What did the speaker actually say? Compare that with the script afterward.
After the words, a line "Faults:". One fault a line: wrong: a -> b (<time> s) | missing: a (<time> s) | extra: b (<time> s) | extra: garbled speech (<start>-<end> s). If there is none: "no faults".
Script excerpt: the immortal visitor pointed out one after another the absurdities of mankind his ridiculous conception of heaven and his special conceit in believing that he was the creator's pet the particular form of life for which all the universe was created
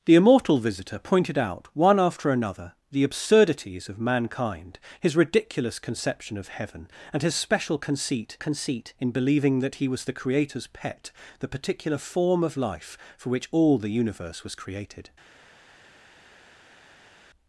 the immortal visitor pointed out one after another the absurdities of mankind his ridiculous conception of heaven and his special conceit conceit in believing that he was the creator's pet the particular form of life for which all the universe was created
Faults:
extra: conceit (8.4 s)